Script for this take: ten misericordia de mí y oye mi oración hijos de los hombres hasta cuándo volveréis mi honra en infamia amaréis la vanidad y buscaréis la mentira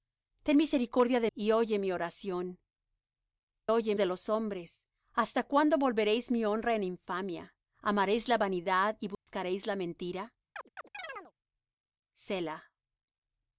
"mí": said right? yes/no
no